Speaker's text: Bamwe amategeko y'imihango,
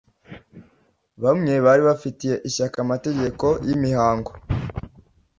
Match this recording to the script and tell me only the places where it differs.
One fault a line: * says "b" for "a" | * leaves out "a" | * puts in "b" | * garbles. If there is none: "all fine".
* puts in "bari bafitiye ishyaka"